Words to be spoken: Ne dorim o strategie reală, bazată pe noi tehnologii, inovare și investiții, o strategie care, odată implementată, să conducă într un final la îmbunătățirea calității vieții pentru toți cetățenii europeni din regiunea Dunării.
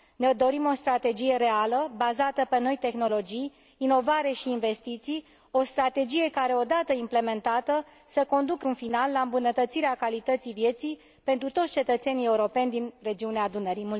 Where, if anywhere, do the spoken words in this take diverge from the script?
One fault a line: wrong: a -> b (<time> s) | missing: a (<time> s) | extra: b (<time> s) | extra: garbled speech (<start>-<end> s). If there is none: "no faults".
missing: într (8.7 s)